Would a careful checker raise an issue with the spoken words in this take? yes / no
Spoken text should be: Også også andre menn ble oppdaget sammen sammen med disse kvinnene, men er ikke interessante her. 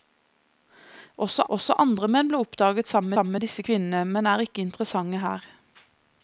no